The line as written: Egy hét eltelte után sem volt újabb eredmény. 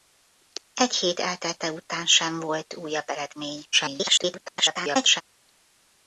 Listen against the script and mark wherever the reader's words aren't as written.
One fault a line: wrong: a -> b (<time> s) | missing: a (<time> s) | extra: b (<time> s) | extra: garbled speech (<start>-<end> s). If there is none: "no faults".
extra: garbled speech (3.7-5.2 s)